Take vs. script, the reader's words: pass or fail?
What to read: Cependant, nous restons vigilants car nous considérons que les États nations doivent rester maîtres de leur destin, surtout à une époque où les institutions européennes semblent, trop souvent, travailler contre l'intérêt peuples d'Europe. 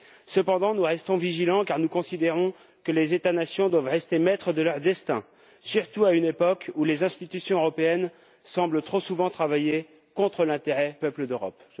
pass